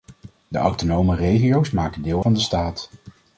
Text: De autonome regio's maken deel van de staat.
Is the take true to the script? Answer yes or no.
yes